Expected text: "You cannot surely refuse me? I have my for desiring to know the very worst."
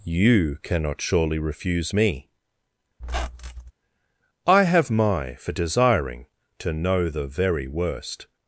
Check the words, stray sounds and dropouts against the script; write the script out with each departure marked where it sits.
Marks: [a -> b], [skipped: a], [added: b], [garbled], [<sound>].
"You cannot surely refuse me? [squeak] I have my for desiring to know the very worst."